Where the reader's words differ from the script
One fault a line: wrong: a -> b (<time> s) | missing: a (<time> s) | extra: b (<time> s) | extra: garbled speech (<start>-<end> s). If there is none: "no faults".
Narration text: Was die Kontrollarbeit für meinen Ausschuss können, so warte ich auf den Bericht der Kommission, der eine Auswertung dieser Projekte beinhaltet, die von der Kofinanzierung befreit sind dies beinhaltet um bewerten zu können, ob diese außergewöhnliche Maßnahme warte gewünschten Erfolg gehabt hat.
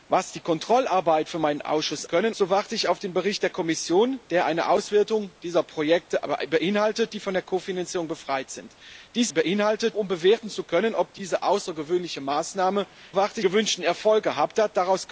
no faults